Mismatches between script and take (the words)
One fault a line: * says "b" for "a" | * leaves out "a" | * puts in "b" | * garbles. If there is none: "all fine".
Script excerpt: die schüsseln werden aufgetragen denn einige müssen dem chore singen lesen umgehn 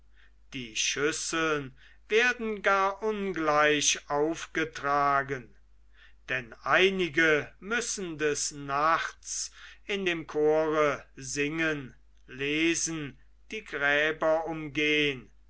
* puts in "gar ungleich"
* puts in "des nachts in"
* puts in "die gräber"